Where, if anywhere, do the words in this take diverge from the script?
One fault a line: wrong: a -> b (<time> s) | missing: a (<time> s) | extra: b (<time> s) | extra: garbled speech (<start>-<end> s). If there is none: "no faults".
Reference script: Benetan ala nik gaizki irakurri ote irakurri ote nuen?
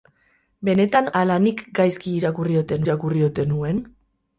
no faults